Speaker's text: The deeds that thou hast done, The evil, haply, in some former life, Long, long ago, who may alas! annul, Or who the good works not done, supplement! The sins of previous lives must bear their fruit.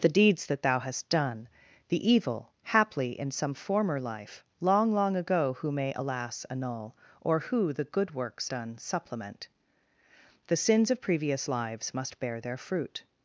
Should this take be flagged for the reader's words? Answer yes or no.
yes